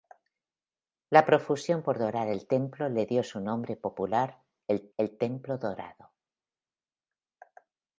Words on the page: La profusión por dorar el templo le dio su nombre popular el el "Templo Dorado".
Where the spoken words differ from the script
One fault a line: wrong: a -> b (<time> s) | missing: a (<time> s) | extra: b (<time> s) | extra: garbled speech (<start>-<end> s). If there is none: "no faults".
no faults